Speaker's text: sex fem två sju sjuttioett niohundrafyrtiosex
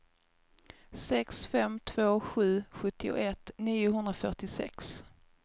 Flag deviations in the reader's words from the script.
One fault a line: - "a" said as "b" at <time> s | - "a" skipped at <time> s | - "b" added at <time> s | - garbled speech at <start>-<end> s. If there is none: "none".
none